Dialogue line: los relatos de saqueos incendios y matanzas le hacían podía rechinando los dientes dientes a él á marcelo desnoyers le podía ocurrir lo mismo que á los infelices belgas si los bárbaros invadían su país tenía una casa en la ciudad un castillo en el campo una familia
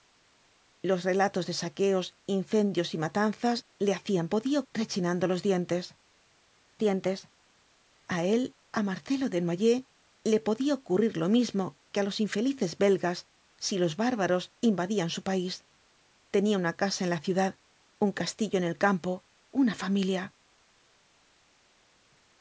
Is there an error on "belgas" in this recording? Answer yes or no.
no